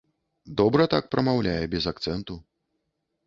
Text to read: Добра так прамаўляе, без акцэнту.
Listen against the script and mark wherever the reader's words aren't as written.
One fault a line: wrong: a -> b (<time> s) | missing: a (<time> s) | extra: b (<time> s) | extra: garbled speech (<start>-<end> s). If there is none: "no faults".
no faults